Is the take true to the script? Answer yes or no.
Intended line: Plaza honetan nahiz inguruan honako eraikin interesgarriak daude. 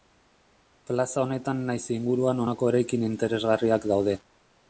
yes